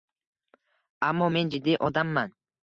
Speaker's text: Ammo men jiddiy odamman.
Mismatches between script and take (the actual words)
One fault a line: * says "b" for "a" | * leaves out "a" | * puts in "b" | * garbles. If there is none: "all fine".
all fine